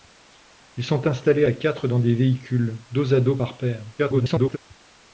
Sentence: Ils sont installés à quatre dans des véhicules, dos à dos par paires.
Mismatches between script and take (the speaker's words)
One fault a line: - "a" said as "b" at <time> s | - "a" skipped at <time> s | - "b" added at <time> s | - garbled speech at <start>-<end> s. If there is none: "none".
- garbled speech at 4.0-4.6 s